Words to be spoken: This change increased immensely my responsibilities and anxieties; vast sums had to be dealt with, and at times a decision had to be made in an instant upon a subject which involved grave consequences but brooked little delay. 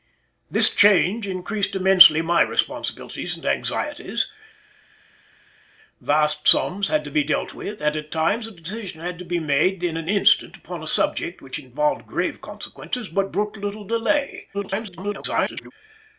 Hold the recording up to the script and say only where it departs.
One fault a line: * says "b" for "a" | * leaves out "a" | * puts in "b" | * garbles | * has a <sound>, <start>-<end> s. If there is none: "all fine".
* garbles